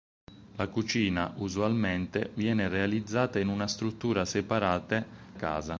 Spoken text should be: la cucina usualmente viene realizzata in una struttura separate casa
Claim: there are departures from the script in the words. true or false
false